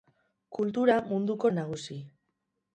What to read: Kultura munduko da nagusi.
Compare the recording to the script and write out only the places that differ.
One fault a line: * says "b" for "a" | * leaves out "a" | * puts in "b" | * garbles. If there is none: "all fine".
all fine